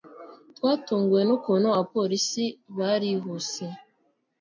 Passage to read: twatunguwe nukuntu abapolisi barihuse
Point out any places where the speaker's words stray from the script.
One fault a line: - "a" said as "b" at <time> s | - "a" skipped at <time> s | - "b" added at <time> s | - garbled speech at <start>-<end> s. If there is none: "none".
none